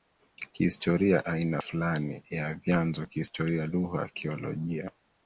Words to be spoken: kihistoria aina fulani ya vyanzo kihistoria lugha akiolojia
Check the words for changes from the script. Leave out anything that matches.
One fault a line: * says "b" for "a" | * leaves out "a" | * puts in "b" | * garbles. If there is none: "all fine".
all fine